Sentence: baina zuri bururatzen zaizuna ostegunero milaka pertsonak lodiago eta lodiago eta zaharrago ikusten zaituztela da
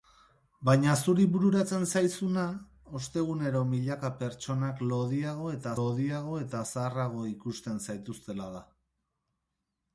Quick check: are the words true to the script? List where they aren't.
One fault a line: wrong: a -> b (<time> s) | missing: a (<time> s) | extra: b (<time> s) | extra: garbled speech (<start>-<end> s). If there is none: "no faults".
no faults